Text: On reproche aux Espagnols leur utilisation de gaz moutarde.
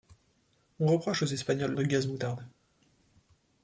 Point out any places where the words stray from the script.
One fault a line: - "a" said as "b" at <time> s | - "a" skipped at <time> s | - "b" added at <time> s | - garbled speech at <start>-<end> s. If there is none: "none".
- "leur utilisation" skipped at 1.7 s